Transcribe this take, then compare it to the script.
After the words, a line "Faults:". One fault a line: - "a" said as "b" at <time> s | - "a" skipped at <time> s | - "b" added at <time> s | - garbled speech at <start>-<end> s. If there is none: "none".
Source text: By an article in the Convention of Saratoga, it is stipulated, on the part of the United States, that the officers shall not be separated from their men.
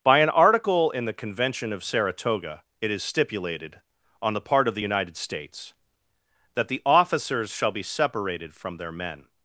By an article in the Convention of Saratoga, it is stipulated, on the part of the United States, that the officers shall be separated from their men.
Faults:
- "not" skipped at 7.7 s